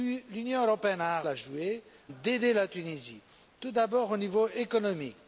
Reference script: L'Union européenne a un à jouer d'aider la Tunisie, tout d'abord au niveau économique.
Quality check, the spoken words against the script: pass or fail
pass